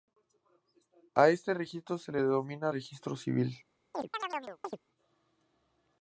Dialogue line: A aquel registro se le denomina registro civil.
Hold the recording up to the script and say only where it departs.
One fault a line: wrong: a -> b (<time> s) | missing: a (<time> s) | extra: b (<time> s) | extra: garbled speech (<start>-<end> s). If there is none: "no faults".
wrong: aquel -> este (1.3 s)